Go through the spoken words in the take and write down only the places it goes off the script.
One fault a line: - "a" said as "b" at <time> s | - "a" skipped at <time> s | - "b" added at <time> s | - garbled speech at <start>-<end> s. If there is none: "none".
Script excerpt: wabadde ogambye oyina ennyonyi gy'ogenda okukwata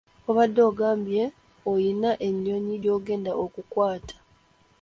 none